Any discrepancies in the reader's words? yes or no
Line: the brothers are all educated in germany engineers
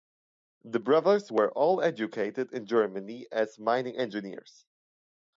yes